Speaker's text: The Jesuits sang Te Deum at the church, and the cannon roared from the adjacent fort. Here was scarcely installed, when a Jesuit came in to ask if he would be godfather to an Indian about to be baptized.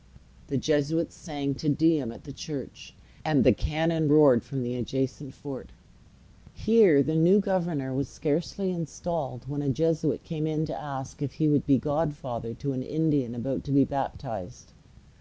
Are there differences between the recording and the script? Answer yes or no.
yes